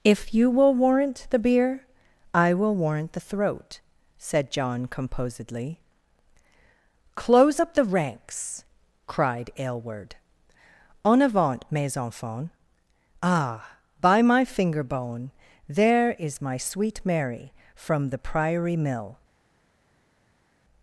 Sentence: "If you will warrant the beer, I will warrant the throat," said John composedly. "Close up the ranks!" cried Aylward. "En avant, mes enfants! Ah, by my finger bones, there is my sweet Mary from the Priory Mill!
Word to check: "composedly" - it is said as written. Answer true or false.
true